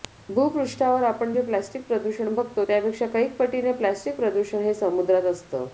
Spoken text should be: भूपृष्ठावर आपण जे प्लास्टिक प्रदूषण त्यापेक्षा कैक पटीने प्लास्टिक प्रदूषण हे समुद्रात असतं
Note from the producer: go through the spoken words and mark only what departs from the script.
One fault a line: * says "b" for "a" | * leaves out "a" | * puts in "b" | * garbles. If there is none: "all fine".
* puts in "बघतो"